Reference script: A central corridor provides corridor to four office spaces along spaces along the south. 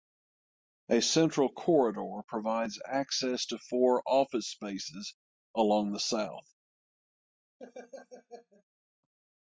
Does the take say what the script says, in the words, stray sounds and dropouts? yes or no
no